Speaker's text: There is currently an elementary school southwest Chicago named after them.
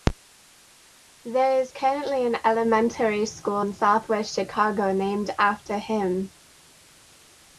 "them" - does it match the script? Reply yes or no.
no